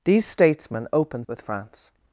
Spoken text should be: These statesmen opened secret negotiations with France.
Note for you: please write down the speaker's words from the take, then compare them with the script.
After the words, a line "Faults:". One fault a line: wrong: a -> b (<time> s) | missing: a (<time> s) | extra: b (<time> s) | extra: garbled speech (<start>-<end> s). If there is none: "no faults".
These statesmen opened with France.
Faults:
missing: secret negotiations (1.3 s)